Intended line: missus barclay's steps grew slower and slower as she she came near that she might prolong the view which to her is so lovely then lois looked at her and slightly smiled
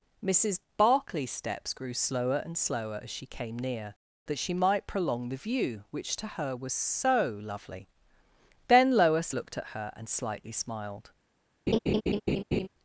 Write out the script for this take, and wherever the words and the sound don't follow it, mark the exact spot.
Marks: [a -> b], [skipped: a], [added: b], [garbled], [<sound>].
missus barclay's steps grew slower and slower as she [skipped: she] came near that she might prolong the view which to her [is -> was] so lovely then lois looked at her and slightly smiled [laugh]